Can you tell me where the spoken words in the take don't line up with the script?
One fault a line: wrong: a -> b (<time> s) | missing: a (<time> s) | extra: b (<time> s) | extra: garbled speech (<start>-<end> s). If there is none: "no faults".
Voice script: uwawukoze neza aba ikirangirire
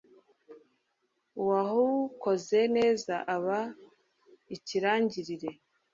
no faults